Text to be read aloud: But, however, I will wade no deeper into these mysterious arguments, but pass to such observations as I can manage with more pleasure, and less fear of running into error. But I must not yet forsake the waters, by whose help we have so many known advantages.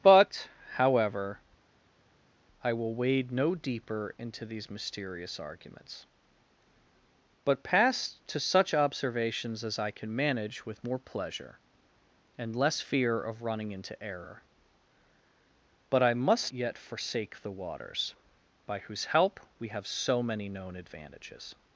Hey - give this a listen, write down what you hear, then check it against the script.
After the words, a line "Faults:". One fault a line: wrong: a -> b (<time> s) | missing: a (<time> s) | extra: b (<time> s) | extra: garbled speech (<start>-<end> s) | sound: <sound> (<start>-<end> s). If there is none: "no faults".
But, however, I will wade no deeper into these mysterious arguments, but pass to such observations as I can manage with more pleasure, and less fear of running into error. But I must yet forsake the waters, by whose help we have so many known advantages.
Faults:
missing: not (16.5 s)